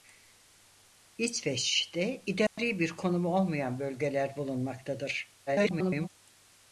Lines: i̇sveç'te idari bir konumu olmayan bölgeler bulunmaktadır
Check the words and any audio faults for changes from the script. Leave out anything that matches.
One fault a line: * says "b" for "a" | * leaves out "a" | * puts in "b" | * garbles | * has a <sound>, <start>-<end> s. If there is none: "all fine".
* has a dropout, 2.5-2.6 s
* garbles